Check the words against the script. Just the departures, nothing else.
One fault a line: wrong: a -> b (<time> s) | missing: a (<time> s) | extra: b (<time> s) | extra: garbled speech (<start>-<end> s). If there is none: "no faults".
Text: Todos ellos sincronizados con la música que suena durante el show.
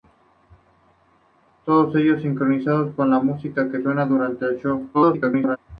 extra: garbled speech (4.9-5.6 s)